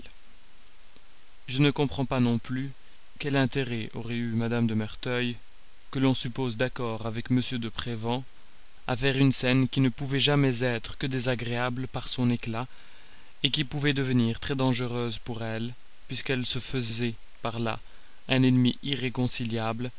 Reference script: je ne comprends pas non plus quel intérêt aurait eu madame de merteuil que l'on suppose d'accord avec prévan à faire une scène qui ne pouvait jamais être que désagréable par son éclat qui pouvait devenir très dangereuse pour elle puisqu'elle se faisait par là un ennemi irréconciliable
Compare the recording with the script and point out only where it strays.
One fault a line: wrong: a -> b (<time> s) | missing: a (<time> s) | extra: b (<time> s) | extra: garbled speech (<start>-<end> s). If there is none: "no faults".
extra: m de (7.3 s)